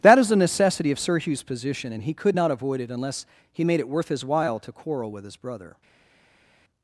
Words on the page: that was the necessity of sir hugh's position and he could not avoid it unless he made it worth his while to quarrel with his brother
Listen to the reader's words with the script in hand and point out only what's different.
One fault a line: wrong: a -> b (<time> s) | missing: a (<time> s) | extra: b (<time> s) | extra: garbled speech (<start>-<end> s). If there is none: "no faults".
wrong: was -> is (0.2 s)